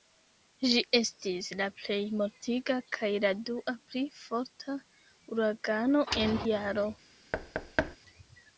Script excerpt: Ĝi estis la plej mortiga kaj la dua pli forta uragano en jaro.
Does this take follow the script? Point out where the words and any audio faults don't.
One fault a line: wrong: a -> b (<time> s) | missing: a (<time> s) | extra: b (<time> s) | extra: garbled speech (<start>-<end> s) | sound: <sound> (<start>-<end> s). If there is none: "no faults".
sound: thud (7.3-8.0 s)